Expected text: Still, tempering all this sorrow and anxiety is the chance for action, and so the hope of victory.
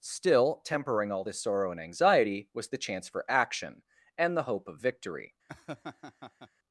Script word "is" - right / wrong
wrong